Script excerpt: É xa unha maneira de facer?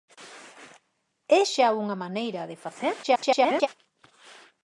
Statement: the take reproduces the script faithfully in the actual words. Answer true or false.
false